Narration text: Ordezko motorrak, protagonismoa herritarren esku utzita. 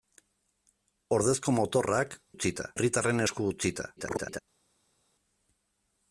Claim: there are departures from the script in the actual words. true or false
true